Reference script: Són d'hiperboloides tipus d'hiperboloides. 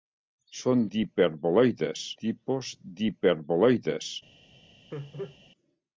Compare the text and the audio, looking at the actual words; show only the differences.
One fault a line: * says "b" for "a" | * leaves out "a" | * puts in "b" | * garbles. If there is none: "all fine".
all fine